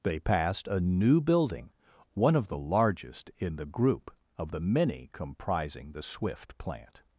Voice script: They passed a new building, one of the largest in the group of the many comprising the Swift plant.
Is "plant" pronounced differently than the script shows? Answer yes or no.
no